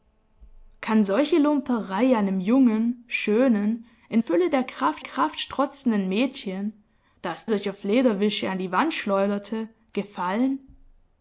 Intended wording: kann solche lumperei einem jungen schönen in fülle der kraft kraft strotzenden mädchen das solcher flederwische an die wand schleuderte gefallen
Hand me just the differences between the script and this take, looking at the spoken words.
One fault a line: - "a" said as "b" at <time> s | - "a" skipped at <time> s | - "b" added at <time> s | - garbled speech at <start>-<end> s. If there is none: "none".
none